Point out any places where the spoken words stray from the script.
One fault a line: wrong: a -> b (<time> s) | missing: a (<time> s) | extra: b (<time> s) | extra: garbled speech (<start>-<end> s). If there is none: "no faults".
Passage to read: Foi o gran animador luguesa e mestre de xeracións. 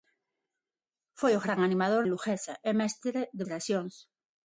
no faults